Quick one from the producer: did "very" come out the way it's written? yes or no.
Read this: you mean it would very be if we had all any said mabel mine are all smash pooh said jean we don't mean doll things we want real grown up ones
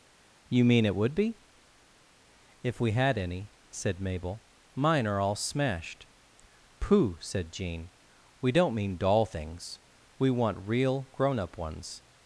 no